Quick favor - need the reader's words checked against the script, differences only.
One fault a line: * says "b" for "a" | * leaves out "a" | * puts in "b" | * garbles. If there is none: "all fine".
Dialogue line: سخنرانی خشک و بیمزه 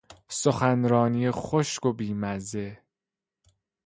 all fine